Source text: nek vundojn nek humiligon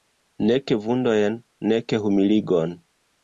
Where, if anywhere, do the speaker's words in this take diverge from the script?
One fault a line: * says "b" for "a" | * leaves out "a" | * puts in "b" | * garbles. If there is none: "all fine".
all fine